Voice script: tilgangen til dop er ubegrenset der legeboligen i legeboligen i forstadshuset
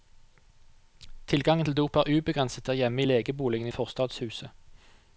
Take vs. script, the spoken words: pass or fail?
fail